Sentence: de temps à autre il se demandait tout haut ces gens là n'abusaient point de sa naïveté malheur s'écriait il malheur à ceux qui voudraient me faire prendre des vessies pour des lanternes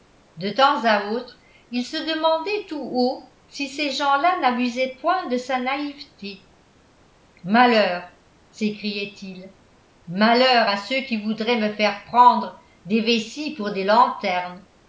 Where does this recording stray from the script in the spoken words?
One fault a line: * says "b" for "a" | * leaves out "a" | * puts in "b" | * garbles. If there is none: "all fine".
* puts in "si"